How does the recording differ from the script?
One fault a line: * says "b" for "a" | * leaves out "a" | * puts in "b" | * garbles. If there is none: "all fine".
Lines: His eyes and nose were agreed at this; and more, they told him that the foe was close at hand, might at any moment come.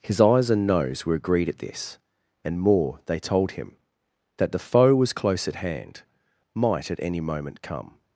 all fine